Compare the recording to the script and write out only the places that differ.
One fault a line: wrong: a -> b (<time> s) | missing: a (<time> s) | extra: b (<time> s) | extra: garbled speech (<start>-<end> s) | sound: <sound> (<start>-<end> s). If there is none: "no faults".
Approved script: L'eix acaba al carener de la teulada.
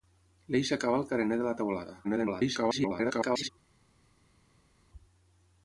extra: garbled speech (2.0-3.5 s)